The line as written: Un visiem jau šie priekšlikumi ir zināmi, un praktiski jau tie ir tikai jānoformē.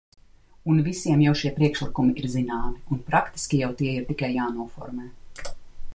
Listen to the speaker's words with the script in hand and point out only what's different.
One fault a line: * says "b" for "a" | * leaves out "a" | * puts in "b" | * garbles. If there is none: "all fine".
all fine